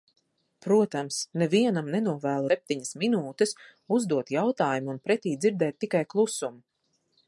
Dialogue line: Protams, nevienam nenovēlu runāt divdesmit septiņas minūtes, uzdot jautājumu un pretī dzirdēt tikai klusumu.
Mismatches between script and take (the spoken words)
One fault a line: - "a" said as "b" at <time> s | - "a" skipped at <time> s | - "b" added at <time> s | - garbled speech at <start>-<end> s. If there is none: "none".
- "runāt divdesmit" skipped at 2.5 s